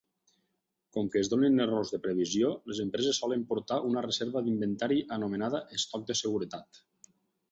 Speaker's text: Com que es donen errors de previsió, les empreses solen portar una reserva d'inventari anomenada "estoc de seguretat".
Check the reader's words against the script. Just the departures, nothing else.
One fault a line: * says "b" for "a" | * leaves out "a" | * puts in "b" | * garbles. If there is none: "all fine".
all fine